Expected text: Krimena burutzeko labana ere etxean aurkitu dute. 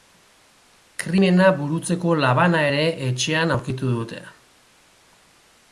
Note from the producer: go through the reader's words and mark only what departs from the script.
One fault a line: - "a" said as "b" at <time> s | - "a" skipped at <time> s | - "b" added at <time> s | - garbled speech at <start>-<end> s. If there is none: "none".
none